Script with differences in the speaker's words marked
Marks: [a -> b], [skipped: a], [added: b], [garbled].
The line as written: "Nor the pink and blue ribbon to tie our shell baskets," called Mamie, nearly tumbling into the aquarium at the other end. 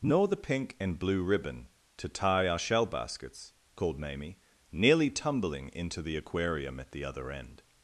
"Nor the pink and blue ribbon to tie our shell baskets," called Mamie, nearly tumbling into the aquarium at the other end.